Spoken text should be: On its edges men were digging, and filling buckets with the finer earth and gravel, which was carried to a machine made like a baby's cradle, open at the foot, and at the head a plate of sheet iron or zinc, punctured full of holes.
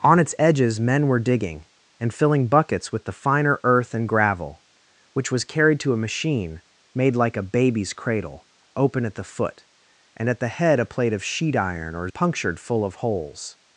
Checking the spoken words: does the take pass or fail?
fail